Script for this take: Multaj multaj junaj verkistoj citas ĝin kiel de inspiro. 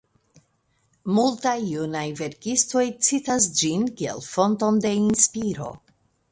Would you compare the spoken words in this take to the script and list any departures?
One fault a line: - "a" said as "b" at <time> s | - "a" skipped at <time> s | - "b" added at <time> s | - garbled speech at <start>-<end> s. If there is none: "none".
- "multaj" skipped at 1.5 s
- "fonton" added at 4.3 s